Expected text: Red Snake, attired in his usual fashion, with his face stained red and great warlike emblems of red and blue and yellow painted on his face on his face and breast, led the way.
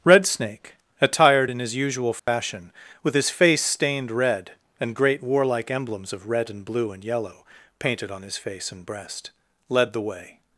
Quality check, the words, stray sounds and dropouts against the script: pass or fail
fail